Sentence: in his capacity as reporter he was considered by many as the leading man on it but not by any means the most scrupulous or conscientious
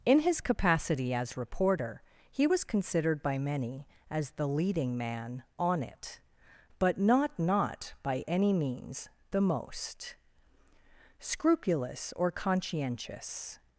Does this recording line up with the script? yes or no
no